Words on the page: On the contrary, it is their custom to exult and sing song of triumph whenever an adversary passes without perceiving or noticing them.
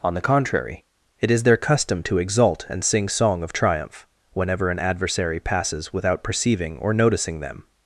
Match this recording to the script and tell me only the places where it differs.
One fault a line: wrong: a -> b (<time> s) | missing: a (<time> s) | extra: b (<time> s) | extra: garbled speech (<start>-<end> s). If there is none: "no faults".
no faults